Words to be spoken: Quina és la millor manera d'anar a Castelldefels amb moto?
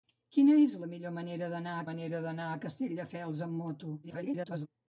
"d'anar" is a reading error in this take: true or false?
false